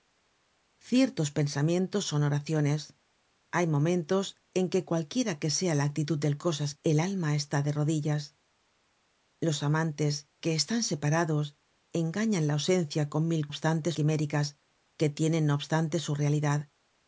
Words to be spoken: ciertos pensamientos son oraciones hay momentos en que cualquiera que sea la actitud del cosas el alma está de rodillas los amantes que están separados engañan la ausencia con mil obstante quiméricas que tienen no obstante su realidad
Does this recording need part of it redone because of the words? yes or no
no